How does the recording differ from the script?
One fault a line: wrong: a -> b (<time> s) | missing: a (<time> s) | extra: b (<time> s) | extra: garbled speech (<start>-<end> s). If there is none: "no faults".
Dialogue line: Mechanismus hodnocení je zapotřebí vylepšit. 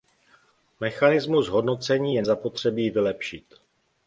no faults